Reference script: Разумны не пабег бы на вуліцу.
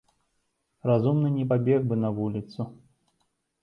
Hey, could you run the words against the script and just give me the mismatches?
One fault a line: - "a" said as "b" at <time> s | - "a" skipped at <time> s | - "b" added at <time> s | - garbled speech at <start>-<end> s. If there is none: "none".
none